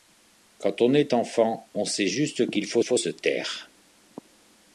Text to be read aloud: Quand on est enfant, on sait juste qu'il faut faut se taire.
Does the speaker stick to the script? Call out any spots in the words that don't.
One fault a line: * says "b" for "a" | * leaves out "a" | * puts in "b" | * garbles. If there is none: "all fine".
all fine